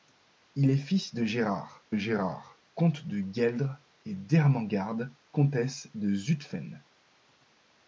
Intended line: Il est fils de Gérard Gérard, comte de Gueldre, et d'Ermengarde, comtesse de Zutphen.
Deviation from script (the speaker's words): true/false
false